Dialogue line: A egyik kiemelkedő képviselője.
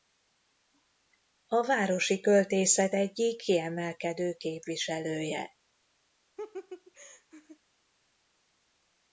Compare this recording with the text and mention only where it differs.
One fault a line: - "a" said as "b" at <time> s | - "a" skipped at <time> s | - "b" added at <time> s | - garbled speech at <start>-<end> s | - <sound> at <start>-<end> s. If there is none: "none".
- "városi költészet" added at 1.6 s
- laugh at 6.4-7.6 s